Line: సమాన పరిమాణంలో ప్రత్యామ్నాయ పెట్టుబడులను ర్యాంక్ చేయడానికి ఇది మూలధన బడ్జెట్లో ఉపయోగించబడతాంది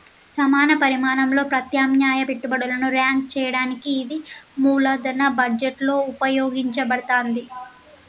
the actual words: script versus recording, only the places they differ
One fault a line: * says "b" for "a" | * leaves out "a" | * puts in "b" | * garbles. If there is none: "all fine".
all fine